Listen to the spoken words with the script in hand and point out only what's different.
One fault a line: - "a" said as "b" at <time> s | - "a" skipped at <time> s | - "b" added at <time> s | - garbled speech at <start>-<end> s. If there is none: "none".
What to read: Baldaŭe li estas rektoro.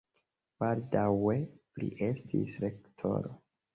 - "estas" said as "estis" at 2.1 s